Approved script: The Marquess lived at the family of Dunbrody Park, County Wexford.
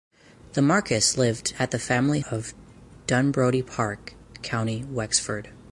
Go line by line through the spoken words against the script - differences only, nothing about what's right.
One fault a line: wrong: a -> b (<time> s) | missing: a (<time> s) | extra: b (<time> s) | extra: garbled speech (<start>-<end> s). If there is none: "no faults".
no faults